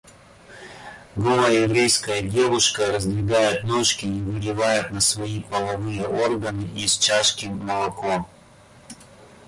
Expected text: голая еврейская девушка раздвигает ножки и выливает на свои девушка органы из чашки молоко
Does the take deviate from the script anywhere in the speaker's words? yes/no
yes